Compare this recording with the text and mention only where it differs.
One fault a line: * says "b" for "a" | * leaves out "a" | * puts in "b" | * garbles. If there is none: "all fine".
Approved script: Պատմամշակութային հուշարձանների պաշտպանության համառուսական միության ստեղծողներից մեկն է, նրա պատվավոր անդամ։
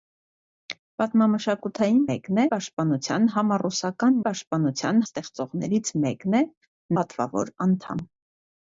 * says "մեկն" for "հուշարձանների"
* says "պաշտպանության" for "միության"
* leaves out "նրա"